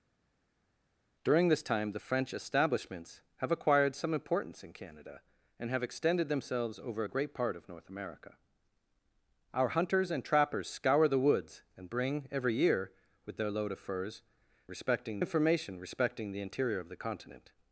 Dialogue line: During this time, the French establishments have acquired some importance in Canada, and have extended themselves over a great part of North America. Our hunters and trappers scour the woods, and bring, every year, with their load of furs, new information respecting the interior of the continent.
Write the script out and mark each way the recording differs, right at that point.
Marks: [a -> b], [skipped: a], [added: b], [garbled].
During this time, the French establishments have acquired some importance in Canada, and have extended themselves over a great part of North America. Our hunters and trappers scour the woods, and bring, every year, with their load of furs, [new -> respecting] information respecting the interior of the continent.